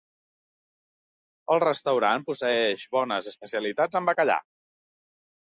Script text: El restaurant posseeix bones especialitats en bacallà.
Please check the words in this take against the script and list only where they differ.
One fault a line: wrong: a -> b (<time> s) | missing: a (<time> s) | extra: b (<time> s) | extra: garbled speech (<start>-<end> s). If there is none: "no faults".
no faults